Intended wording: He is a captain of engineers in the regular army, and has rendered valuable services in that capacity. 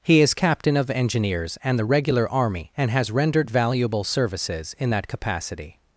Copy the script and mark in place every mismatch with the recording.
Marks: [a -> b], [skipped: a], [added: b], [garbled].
He is [skipped: a] captain of engineers [in -> and] the regular army, and has rendered valuable services in that capacity.